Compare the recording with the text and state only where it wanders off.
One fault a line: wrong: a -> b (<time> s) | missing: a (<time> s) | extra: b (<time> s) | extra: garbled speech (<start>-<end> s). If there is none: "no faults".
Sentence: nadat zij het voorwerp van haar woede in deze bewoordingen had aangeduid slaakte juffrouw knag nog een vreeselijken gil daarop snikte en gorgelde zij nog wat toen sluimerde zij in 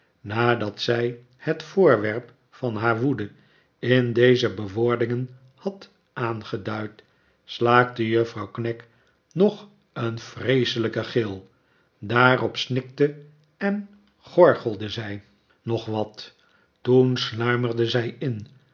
no faults